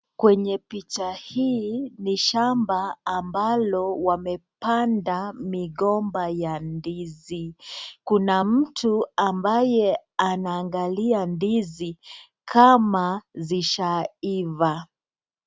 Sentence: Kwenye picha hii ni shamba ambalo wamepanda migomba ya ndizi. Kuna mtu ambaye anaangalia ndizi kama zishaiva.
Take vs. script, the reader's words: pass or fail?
pass